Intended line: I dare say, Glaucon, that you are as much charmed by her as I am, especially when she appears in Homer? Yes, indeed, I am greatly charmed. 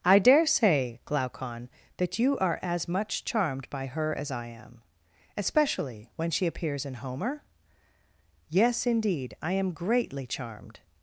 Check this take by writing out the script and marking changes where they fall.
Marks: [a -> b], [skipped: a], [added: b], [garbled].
I dare say, Glaucon, that you are as much charmed by her as I am, especially when she appears in Homer? Yes, indeed, I am greatly charmed.